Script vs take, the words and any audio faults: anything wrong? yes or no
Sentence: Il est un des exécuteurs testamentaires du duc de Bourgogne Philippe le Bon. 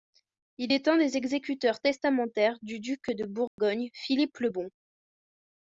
yes